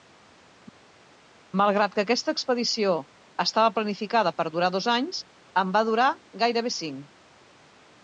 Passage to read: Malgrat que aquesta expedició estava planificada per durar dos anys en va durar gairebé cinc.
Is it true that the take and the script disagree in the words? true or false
false